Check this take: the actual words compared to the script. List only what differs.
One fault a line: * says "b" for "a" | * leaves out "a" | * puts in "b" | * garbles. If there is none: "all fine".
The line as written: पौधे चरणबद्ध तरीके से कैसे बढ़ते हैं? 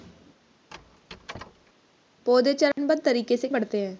* leaves out "कैसे"